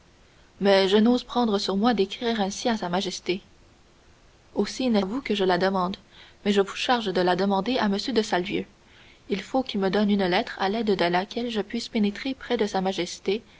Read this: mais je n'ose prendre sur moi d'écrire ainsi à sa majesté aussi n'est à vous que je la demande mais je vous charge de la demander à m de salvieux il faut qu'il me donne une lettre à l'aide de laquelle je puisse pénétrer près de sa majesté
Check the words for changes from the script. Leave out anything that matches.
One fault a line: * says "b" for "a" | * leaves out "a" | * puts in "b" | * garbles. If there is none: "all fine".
all fine